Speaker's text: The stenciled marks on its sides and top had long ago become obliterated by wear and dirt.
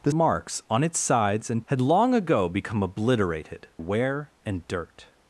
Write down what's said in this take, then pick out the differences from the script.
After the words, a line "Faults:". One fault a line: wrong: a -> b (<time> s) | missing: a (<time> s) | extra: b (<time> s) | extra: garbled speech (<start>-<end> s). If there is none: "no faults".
The marks on its sides and had long ago become obliterated wear and dirt.
Faults:
missing: stenciled (0.1 s)
missing: top (1.6 s)
missing: by (3.7 s)